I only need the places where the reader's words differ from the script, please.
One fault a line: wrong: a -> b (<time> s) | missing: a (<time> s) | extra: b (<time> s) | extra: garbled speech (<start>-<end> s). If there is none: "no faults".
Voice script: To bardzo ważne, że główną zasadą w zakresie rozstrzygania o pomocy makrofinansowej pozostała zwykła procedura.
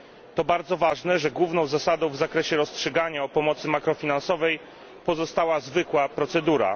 no faults